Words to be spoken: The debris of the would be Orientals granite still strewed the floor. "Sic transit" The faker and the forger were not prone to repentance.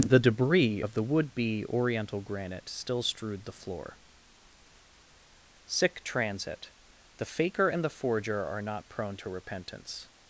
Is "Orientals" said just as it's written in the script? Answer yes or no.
no